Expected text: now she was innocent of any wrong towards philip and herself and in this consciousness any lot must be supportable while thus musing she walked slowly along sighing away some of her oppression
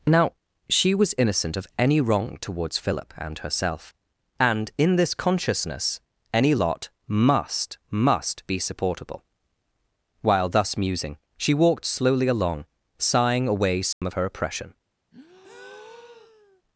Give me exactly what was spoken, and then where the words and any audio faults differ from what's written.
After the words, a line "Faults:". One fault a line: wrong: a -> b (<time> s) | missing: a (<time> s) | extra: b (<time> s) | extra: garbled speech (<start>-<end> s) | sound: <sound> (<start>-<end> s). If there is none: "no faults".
now she was innocent of any wrong towards philip and herself and in this consciousness any lot must must be supportable while thus musing she walked slowly along sighing away some of her oppression
Faults:
extra: must (7.9 s)
sound: dropout (13.9-14.0 s)
sound: breath (15.1-16.6 s)